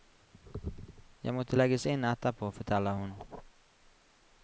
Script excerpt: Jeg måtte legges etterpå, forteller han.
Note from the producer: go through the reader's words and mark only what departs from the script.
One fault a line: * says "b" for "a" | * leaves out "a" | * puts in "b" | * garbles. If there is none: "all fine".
* puts in "inn"
* says "hun" for "han"